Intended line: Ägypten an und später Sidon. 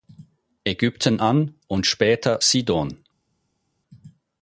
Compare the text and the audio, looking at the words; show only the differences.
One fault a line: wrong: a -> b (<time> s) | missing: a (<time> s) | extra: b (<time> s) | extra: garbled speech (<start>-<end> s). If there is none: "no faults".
no faults